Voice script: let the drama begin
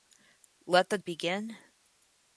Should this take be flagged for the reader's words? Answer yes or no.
yes